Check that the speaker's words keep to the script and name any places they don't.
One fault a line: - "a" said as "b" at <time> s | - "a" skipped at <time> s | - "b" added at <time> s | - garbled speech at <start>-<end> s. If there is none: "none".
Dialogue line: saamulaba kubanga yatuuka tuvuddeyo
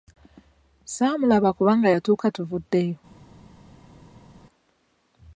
none